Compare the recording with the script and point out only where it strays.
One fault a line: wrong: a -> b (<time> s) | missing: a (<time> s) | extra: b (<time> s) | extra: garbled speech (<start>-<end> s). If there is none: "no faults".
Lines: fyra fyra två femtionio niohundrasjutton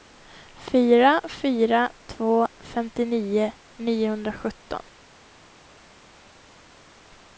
no faults